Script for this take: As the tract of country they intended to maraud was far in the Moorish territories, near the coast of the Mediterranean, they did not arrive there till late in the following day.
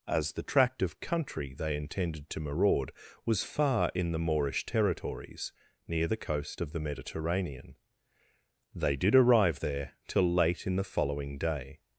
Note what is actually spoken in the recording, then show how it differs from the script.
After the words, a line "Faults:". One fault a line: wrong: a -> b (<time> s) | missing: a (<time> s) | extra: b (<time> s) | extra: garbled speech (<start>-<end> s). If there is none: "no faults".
As the tract of country they intended to maraud was far in the Moorish territories, near the coast of the Mediterranean, they did arrive there till late in the following day.
Faults:
missing: not (9.2 s)